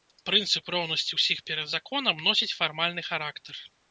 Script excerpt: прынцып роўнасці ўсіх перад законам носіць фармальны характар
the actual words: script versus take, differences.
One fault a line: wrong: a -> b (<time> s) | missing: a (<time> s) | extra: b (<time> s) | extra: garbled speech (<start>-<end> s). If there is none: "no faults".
no faults